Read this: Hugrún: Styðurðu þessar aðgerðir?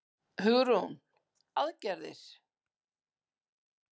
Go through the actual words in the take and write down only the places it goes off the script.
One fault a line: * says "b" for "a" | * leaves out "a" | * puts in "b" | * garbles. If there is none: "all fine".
* leaves out "Styðurðu þessar"